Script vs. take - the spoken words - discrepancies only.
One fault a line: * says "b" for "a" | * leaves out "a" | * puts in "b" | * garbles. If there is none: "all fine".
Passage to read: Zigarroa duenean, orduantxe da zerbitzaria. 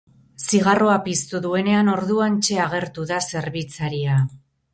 * puts in "piztu"
* puts in "agertu"